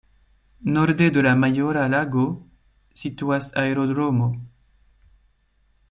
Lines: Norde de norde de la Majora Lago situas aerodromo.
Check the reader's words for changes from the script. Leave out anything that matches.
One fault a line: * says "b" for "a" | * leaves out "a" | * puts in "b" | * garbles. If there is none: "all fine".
* leaves out "norde de"